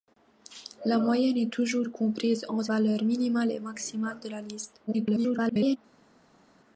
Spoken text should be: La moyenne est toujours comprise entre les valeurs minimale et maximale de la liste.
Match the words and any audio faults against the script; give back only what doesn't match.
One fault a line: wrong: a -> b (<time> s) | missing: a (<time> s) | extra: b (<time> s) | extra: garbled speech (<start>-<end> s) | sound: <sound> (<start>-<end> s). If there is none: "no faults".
missing: les (2.7 s)
extra: garbled speech (4.9-5.8 s)